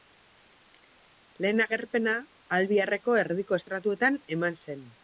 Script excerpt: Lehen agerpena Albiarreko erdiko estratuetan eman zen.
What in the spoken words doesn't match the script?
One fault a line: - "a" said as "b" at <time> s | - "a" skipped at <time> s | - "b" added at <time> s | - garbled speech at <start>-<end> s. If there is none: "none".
none